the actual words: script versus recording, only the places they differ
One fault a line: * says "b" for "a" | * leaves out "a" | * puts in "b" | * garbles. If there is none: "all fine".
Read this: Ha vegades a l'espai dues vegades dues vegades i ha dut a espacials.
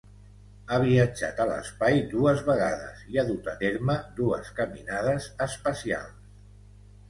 * says "viatjat" for "vegades"
* leaves out "dues vegades"
* puts in "terme dues caminades"